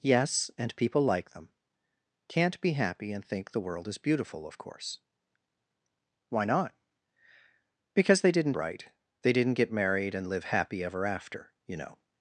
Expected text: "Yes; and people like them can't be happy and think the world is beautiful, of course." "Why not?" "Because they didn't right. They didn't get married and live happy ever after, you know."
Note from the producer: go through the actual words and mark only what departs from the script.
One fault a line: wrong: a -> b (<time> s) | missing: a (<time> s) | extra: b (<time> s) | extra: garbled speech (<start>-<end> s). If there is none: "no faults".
no faults